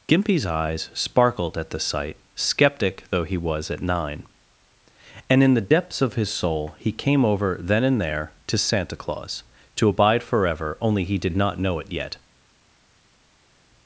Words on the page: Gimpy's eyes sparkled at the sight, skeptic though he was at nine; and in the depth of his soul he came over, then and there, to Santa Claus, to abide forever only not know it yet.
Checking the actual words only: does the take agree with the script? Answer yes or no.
no